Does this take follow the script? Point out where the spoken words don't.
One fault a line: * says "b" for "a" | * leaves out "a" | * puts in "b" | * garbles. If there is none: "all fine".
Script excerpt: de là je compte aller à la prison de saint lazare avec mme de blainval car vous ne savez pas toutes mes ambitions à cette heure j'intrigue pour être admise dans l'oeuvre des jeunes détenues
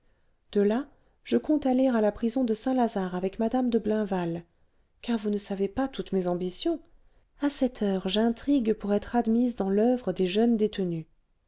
all fine